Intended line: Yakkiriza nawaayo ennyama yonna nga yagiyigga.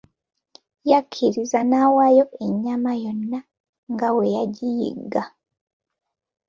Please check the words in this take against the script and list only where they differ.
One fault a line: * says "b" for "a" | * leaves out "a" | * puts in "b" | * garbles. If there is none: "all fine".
* puts in "bwe"